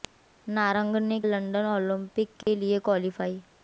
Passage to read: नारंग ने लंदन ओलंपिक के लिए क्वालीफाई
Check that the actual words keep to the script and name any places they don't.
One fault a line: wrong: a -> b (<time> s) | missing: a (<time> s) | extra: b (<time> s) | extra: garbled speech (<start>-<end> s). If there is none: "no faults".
no faults